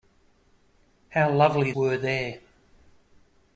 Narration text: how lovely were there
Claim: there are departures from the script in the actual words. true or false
false